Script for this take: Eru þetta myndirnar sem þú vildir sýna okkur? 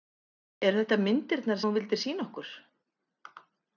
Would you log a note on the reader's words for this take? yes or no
yes